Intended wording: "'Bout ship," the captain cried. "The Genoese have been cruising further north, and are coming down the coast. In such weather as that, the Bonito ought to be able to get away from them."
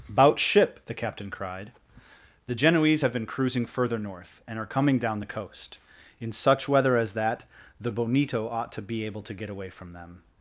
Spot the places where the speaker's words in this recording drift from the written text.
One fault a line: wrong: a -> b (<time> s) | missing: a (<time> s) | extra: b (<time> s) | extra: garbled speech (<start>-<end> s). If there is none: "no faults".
no faults